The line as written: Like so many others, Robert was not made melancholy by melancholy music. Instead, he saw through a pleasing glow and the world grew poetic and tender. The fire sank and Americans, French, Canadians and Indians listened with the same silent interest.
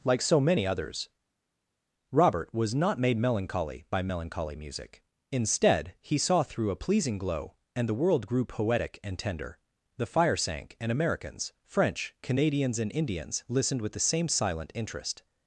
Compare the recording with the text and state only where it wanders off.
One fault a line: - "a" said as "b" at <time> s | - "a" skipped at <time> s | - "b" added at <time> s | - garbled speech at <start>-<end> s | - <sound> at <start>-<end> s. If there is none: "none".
none